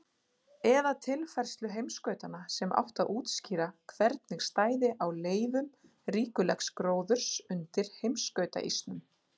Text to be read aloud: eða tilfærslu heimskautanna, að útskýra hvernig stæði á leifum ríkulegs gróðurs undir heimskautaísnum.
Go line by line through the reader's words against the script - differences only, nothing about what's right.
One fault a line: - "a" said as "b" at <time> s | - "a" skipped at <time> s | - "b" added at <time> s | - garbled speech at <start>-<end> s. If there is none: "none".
- "sem átti" added at 2.5 s